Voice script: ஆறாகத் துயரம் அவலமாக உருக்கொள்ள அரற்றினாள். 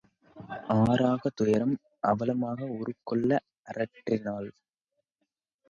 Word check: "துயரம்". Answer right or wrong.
right